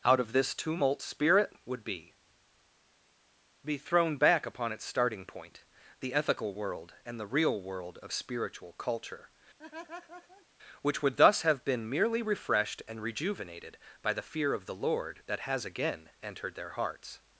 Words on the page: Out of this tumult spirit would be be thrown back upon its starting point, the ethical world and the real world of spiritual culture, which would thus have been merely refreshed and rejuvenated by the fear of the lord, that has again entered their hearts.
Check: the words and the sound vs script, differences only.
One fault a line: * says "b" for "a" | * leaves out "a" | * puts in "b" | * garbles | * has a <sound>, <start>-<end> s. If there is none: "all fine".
* has a laugh, 9.6-10.5 s